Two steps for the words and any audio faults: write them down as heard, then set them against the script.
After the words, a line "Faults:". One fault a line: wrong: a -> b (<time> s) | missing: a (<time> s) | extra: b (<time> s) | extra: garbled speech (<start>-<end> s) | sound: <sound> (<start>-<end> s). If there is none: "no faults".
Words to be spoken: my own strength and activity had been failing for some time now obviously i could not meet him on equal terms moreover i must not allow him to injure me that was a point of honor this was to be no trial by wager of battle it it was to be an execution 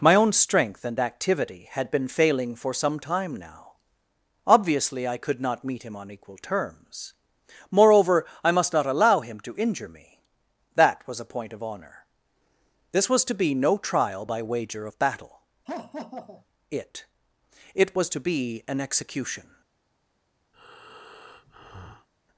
my own strength and activity had been failing for some time now obviously i could not meet him on equal terms moreover i must not allow him to injure me that was a point of honor this was to be no trial by wager of battle it it was to be an execution
Faults:
sound: laugh (15.7-16.5 s)
sound: breath (20.5-22.1 s)